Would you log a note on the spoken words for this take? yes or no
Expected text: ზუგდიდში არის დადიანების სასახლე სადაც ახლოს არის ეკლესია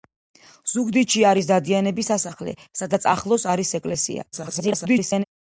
yes